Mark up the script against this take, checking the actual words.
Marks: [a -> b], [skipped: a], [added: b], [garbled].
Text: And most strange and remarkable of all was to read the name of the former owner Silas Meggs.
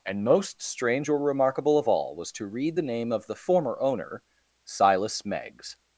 And most strange [and -> or] remarkable of all was to read the name of the former owner Silas Meggs.